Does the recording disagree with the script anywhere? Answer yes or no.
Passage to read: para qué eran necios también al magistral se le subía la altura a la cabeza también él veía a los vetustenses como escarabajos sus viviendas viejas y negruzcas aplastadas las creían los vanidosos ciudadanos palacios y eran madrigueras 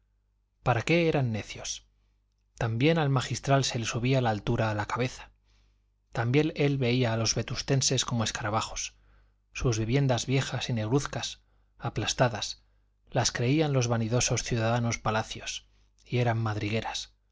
no